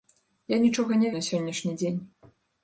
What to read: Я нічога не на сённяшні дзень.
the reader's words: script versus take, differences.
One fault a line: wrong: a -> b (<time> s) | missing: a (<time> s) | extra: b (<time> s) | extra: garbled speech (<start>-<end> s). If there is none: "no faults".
no faults